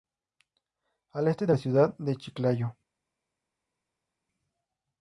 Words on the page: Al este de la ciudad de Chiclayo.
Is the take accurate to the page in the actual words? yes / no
yes